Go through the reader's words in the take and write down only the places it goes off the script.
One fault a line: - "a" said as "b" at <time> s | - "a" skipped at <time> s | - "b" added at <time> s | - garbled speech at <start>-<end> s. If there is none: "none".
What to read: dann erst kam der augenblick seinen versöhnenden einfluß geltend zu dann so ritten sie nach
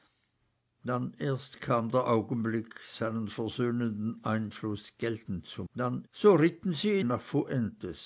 none